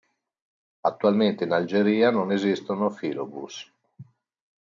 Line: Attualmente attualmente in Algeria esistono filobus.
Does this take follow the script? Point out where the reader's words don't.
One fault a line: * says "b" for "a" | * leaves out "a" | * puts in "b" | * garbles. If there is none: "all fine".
* leaves out "attualmente"
* puts in "non"